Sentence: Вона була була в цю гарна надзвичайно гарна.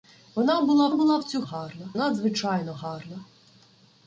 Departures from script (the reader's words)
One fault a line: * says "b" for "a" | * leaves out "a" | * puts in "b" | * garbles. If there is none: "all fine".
all fine